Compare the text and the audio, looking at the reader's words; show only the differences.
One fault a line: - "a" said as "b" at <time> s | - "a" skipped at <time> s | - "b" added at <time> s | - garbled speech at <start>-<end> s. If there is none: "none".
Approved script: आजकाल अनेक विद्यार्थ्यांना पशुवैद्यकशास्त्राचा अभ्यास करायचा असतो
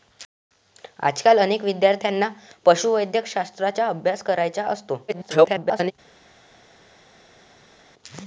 - garbled speech at 5.1-5.9 s